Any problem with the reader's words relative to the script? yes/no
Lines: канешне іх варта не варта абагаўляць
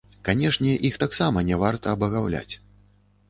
yes